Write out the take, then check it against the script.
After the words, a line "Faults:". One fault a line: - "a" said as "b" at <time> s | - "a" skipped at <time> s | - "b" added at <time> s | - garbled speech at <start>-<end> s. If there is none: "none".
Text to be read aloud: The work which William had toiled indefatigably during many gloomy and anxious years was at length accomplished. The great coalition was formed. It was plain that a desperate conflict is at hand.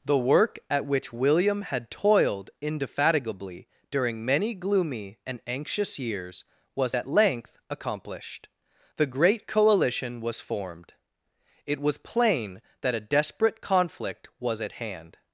The work at which William had toiled indefatigably during many gloomy and anxious years was at length accomplished. The great coalition was formed. It was plain that a desperate conflict was at hand.
Faults:
- "at" added at 0.7 s
- "is" said as "was" at 14.4 s